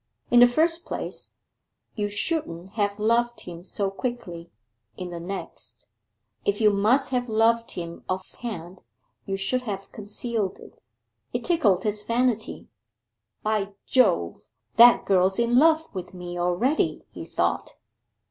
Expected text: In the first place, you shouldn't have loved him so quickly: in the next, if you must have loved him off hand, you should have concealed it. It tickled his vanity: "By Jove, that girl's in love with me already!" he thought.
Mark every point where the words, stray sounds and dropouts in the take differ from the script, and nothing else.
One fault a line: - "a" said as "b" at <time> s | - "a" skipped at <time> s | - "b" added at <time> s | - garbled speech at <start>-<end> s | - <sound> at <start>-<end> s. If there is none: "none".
none